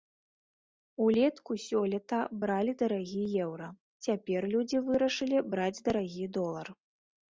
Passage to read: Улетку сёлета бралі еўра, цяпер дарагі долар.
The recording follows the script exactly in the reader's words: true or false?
false